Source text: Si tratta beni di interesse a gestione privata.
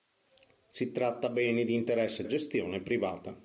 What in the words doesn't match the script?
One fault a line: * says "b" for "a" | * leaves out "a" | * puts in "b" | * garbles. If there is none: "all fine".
all fine